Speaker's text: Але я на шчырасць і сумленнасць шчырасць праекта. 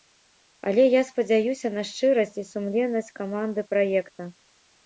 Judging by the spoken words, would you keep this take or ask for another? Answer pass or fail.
fail